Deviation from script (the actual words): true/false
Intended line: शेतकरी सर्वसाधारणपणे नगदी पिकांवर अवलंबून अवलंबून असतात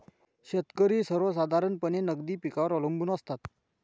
true